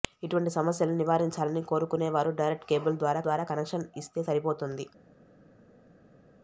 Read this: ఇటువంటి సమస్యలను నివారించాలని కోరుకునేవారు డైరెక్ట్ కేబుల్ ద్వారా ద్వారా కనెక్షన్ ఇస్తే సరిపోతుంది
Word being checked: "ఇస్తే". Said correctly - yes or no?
yes